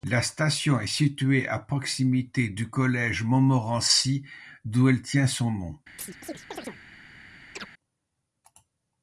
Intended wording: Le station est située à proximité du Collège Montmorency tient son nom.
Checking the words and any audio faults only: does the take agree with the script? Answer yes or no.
no